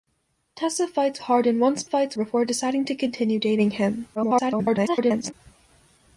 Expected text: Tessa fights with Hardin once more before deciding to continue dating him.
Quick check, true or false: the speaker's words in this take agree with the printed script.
false